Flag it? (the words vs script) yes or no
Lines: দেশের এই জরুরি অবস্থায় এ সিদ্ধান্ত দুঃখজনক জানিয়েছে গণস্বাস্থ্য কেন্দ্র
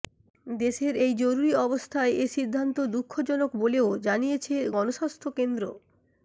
yes